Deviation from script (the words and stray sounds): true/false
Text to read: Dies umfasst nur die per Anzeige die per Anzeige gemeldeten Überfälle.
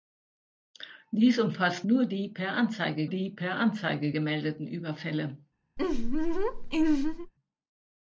true